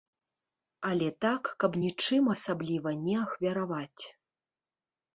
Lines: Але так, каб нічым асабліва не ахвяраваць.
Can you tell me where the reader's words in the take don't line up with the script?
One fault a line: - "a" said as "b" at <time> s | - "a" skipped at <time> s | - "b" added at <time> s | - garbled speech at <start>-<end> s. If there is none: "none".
none